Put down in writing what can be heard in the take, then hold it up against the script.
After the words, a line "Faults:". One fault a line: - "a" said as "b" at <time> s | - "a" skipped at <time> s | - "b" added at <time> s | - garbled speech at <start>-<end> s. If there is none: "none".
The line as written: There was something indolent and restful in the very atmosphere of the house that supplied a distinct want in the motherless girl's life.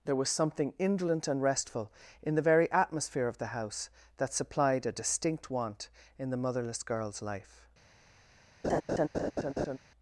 There was something indolent and restful in the very atmosphere of the house that supplied a distinct want in the motherless girl's life.
Faults:
none